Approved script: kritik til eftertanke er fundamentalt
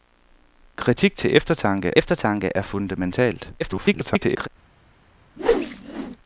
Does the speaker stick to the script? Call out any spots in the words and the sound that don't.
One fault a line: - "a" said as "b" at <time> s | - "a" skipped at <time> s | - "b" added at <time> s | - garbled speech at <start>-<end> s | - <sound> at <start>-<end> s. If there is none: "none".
- "eftertanke" added at 2.0 s
- garbled speech at 3.6-4.5 s
- whoosh at 5.4-6.2 s